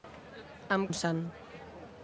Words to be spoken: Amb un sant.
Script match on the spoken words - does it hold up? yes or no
yes